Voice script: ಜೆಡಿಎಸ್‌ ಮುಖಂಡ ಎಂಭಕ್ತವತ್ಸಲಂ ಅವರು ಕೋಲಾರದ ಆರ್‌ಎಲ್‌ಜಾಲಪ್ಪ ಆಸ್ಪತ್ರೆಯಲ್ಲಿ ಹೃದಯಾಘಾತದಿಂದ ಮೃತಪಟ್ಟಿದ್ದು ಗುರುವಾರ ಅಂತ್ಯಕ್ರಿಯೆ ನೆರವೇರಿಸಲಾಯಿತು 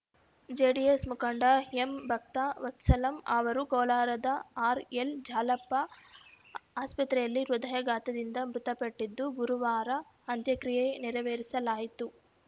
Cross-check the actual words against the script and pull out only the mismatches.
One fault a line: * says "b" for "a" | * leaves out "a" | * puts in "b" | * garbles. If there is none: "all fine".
all fine